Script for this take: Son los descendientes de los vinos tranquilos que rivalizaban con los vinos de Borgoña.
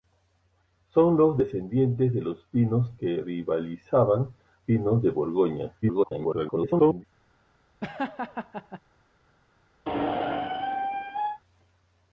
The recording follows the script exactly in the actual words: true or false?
false